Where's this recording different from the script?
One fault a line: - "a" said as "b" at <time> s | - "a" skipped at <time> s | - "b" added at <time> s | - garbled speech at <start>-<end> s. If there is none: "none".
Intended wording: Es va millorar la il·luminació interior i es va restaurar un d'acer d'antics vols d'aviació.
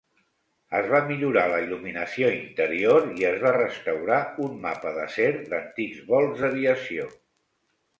- "mapa" added at 4.7 s